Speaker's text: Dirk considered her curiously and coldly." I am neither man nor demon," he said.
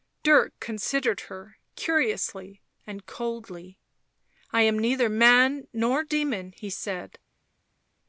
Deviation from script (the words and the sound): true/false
false